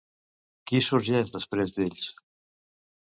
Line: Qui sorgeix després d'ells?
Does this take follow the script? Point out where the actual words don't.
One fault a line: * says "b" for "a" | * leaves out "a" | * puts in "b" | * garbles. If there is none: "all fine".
all fine